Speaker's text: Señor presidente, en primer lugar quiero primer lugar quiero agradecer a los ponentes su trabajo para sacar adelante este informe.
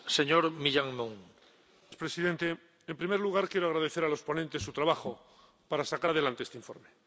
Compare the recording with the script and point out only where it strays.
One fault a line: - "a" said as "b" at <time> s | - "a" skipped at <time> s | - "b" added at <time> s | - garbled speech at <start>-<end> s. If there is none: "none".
- "primer lugar quiero" skipped at 3.7 s